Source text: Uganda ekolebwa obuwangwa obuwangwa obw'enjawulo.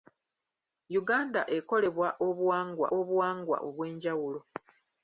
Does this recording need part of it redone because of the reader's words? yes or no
no